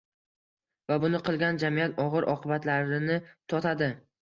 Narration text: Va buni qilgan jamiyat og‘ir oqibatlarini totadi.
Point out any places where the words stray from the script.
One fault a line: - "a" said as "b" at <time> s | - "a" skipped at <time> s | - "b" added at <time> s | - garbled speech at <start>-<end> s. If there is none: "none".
none